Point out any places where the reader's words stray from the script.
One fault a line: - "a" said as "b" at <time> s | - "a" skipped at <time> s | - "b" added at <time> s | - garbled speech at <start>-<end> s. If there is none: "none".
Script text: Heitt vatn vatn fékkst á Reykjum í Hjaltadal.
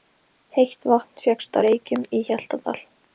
- "vatn" skipped at 1.2 s